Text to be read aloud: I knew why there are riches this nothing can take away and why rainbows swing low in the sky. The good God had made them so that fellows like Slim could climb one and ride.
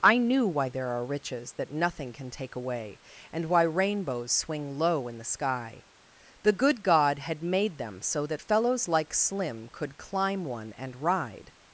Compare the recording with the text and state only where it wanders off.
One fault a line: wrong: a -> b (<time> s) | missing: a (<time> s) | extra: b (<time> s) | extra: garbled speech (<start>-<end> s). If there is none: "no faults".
wrong: this -> that (1.5 s)